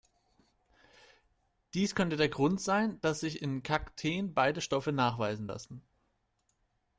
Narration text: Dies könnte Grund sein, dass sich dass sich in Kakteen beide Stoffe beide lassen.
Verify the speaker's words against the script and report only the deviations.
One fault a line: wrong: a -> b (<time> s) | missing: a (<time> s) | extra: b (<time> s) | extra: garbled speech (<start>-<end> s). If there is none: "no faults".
extra: der (2.2 s)
missing: dass sich (3.4 s)
wrong: beide -> nachweisen (4.9 s)